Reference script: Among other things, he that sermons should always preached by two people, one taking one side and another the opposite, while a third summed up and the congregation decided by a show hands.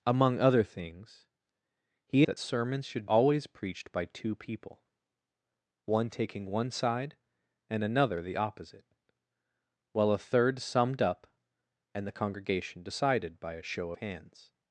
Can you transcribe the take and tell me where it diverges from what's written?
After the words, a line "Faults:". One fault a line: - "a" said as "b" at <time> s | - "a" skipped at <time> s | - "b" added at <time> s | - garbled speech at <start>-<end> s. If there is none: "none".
Among other things, he that sermons should always preached by two people, one taking one side and another the opposite, while a third summed up and the congregation decided by a show hands.
Faults:
none